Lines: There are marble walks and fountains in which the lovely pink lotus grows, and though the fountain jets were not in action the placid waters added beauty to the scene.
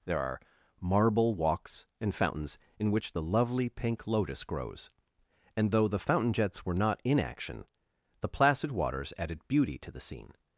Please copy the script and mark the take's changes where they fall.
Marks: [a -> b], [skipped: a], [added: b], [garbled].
There are marble walks and fountains in which the lovely pink lotus grows, and though the fountain jets were not in action the placid waters added beauty to the scene.